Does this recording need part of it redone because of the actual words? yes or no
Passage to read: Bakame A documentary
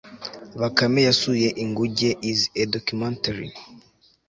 yes